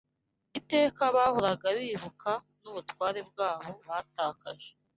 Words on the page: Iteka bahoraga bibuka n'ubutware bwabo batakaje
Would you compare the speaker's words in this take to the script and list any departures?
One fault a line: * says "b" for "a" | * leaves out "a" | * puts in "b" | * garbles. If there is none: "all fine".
all fine